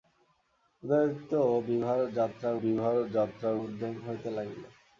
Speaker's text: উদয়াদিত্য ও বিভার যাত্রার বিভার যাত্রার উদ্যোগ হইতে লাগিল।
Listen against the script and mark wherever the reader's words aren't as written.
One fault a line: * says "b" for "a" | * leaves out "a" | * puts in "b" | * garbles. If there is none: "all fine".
all fine